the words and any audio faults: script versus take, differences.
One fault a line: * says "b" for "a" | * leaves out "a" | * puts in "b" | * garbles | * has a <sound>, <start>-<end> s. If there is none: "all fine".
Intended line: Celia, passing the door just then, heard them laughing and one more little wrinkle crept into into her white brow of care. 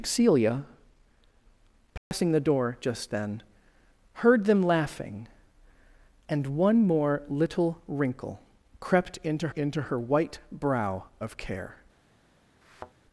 * has a dropout, 2.0-2.1 s
* has a thud, 12.6-12.9 s